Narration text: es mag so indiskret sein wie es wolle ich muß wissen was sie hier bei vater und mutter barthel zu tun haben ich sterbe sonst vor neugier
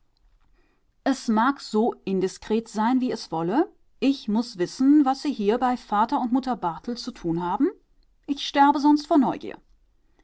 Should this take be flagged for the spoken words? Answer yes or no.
no